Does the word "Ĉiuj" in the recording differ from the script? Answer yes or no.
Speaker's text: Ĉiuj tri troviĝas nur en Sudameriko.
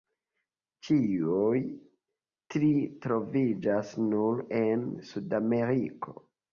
no